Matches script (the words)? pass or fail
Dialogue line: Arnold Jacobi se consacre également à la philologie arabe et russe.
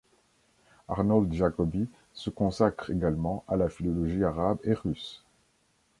pass